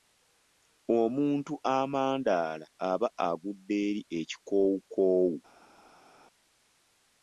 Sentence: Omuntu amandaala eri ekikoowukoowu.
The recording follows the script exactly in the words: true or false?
false